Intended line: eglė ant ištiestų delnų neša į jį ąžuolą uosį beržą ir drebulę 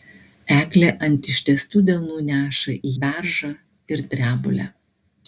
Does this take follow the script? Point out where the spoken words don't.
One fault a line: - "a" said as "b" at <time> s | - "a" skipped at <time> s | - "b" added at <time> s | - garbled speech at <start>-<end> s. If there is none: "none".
- "jį ąžuolą uosį" skipped at 2.9 s